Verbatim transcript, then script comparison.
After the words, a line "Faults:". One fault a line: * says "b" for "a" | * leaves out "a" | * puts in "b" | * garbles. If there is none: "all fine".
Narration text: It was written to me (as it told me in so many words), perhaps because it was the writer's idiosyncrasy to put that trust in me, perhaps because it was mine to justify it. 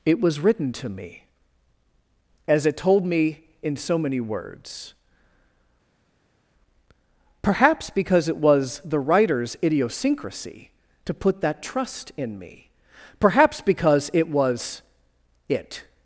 It was written to me (as it told me in so many words), perhaps because it was the writer's idiosyncrasy to put that trust in me, perhaps because it was it.
Faults:
* leaves out "mine to justify"